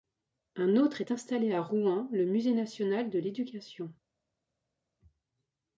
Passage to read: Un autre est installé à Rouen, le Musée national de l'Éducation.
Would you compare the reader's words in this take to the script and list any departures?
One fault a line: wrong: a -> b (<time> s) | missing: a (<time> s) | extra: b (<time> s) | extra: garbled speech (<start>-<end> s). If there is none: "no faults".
no faults